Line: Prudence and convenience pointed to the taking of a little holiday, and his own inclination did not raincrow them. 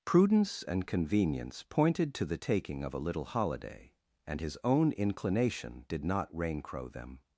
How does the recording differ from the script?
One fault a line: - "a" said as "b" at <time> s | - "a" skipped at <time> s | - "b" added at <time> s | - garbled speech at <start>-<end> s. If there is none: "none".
none